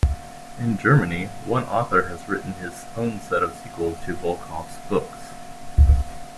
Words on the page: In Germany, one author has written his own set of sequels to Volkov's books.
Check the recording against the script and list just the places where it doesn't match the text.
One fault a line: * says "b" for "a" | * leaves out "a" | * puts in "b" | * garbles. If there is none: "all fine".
all fine